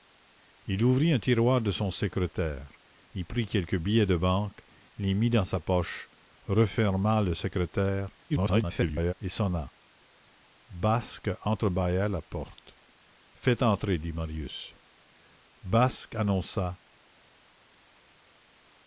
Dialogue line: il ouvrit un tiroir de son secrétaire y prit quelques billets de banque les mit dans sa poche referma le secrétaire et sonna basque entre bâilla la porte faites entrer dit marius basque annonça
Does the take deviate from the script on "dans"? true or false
false